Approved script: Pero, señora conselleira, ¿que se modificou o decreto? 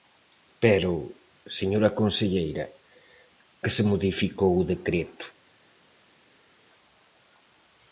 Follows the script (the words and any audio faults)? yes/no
yes